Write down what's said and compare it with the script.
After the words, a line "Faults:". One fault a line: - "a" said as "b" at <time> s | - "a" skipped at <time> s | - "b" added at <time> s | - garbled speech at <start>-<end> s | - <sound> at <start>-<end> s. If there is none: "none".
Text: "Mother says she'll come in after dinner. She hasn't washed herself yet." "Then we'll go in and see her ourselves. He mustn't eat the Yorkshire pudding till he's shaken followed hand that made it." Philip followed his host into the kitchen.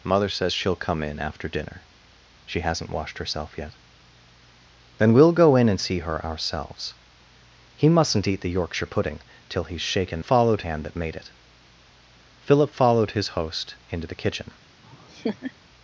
"Mother says she'll come in after dinner. She hasn't washed herself yet." "Then we'll go in and see her ourselves. He mustn't eat the Yorkshire pudding till he's shaken followed hand that made it." Philip followed his host into the kitchen.
Faults:
- laugh at 14.8-15.5 s